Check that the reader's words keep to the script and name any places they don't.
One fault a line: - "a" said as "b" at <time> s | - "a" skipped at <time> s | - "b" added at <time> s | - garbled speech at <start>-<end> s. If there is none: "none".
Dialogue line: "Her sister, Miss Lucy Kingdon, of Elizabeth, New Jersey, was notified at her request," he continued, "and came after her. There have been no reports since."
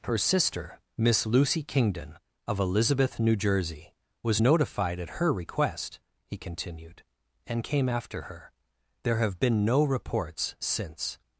none